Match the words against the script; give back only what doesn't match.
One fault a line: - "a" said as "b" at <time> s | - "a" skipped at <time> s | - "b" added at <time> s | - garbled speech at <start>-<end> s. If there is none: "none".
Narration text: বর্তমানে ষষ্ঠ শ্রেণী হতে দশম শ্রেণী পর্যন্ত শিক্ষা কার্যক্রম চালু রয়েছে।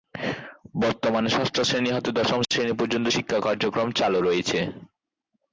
none